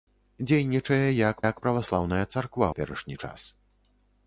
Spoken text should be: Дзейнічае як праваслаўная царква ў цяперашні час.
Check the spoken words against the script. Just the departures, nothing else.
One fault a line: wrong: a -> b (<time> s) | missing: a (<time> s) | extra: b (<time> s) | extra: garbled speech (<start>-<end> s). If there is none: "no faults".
extra: як (1.5 s)
missing: ў (2.7 s)